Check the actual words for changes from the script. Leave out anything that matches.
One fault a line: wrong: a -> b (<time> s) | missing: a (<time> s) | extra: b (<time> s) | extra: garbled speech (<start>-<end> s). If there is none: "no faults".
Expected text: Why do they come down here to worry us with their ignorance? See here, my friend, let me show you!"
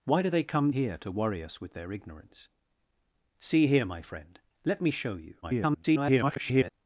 missing: down (0.7 s)
extra: garbled speech (5.4-6.7 s)